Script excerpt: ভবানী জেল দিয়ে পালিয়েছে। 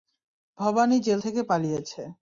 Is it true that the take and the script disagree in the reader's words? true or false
true